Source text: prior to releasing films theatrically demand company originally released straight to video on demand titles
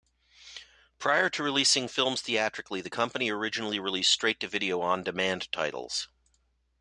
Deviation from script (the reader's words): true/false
true